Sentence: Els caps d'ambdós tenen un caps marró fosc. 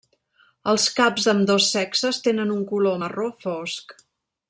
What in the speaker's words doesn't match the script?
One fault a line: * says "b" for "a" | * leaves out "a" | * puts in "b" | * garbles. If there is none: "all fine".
* puts in "sexes"
* says "color" for "caps"